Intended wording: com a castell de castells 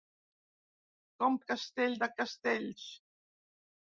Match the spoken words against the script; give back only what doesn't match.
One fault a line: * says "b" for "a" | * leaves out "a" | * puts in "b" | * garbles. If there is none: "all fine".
all fine